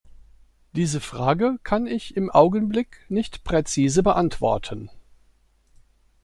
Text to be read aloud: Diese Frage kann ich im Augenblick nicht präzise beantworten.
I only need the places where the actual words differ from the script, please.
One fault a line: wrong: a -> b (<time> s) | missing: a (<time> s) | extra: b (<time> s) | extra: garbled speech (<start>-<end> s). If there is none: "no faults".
no faults